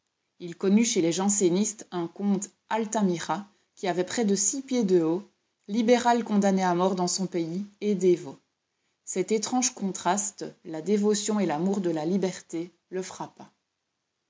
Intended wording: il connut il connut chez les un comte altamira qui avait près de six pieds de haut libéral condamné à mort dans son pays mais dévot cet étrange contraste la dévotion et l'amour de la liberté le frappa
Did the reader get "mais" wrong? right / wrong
wrong